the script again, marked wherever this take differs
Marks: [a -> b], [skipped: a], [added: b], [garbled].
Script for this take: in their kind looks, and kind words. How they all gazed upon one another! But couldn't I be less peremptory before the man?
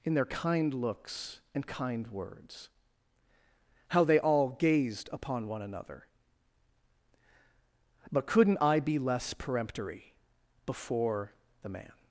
in their kind looks, and kind words. How they all gazed upon one another! But couldn't I be less peremptory before the man?